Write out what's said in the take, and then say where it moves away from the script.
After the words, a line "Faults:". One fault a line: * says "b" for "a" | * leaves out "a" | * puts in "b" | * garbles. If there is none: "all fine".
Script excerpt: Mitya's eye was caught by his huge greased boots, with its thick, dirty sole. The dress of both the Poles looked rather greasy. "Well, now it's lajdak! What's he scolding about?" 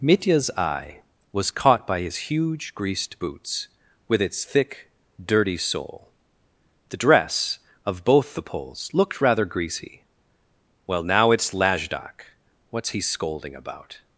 Mitya's eye was caught by his huge greased boots, with its thick, dirty sole. The dress of both the Poles looked rather greasy. "Well, now it's lajdak! What's he scolding about?"
Faults:
all fine